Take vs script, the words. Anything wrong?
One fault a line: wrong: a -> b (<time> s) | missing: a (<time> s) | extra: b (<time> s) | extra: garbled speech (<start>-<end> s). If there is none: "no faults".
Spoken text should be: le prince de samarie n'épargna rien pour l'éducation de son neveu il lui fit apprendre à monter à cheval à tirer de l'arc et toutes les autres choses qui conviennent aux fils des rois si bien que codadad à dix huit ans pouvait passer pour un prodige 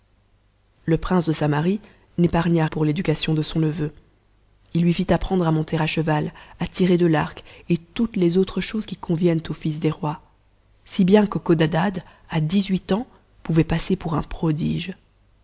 missing: rien (2.6 s)